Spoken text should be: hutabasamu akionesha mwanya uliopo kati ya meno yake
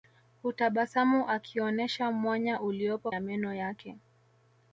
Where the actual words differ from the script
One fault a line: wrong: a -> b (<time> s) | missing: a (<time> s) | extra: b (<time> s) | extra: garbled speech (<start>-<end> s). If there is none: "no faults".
missing: kati (3.1 s)